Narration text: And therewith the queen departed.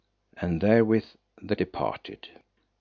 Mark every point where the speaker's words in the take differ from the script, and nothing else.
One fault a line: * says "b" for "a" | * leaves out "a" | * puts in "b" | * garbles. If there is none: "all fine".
* leaves out "queen"